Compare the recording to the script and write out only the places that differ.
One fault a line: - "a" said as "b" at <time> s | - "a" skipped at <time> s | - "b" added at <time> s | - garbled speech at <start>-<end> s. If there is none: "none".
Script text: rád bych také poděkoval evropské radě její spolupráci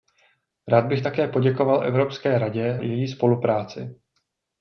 none